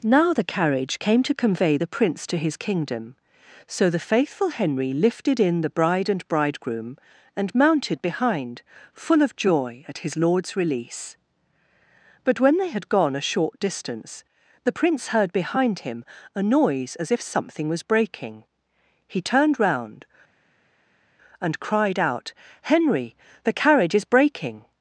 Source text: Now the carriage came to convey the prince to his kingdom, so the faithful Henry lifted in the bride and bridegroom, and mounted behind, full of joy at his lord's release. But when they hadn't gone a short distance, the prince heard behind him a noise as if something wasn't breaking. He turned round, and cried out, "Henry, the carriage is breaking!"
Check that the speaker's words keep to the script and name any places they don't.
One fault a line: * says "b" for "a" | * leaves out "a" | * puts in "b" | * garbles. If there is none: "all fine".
* says "had" for "hadn't"
* says "was" for "wasn't"